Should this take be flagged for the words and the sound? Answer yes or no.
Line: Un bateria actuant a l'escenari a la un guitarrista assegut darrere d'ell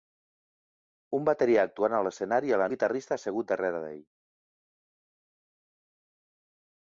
no